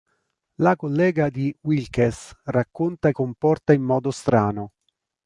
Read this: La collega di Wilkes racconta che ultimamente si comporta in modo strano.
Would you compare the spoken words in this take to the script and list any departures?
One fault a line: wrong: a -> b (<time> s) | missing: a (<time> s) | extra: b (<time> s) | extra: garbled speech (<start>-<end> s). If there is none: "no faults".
missing: che ultimamente si (3.1 s)